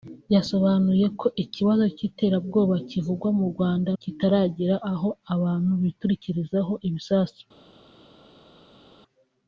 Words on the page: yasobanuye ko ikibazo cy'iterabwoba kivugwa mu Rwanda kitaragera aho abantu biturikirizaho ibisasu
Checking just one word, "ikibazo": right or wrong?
right